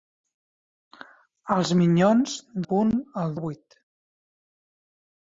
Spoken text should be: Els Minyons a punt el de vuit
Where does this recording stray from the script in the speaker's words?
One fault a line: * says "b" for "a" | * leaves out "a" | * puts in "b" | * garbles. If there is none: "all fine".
all fine